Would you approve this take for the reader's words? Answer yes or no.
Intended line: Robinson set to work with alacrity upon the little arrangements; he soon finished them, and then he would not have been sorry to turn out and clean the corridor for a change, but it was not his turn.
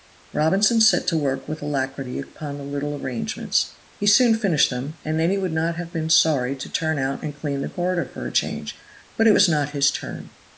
yes